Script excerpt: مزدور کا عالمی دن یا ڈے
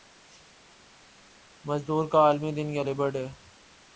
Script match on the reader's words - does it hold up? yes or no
no